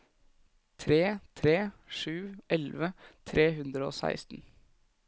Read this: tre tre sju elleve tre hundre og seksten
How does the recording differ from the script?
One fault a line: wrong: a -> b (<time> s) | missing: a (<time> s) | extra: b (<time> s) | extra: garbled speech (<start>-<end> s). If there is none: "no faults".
no faults